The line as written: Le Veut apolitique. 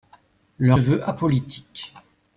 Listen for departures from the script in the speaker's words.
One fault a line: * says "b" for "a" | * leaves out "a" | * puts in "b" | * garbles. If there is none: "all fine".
all fine